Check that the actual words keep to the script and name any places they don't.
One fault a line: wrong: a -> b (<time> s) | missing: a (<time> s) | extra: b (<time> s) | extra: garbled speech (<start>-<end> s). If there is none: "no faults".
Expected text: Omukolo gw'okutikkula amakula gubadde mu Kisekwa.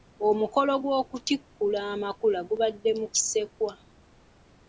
no faults